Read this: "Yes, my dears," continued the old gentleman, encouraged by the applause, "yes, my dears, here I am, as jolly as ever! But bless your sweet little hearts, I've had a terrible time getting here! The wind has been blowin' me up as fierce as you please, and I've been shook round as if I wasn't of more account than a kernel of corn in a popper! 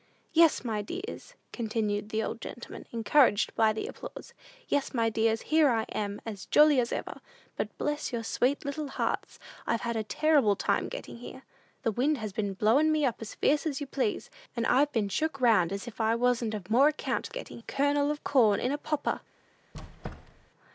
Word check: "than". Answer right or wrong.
wrong